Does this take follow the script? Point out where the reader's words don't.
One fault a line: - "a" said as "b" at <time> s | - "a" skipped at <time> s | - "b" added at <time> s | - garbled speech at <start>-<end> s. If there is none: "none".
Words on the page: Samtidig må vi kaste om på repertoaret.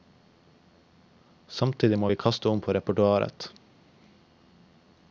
none